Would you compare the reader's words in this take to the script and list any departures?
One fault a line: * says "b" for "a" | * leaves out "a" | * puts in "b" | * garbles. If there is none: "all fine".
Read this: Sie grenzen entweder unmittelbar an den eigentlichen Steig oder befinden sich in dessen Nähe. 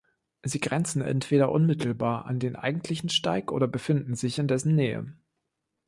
all fine